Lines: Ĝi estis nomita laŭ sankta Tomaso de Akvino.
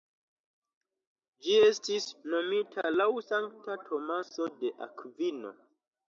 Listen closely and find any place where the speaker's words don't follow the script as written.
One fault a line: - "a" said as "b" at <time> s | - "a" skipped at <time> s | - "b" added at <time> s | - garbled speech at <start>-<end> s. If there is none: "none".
none